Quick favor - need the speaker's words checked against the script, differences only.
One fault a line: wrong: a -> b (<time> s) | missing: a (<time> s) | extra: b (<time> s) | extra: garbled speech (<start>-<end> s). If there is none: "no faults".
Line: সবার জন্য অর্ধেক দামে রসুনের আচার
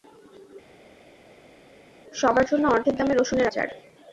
no faults